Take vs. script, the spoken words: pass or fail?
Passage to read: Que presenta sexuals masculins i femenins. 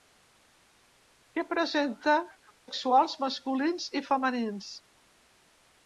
pass